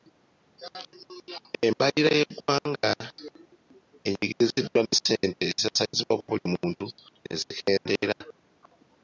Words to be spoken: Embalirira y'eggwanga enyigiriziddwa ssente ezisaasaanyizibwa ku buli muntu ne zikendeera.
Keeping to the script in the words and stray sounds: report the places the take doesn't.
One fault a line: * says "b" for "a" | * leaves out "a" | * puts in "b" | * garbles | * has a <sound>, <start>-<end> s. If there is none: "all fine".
* puts in "ne"